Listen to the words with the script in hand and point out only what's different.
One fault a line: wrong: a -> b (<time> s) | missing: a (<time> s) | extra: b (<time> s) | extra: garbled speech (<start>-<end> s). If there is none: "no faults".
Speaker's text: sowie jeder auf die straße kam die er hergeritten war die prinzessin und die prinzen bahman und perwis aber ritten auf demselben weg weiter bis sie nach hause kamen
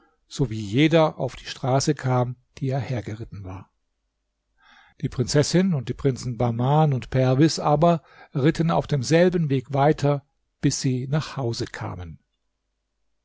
no faults